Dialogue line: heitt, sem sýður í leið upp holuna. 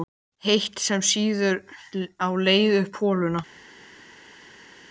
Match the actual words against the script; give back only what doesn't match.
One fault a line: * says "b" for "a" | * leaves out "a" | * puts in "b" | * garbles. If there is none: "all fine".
* says "á" for "í"